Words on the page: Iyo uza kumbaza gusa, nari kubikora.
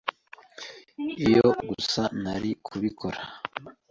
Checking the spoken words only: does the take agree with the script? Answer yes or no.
no